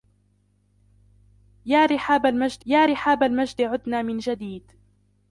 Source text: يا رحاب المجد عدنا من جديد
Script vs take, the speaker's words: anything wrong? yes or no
yes